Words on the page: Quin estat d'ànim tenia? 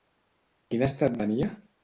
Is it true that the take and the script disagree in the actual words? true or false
true